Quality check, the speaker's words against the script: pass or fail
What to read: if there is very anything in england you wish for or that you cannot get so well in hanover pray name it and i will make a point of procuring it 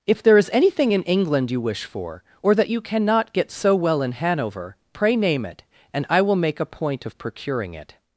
fail